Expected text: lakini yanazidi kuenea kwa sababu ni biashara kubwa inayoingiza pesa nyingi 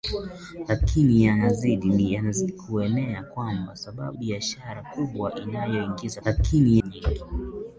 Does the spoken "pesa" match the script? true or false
false